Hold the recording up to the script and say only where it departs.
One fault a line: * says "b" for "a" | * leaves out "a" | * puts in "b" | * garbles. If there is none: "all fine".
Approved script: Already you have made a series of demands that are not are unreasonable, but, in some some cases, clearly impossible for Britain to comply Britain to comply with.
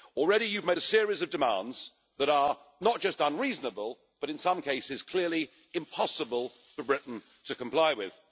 * says "just" for "are"
* leaves out "some"
* leaves out "Britain to comply"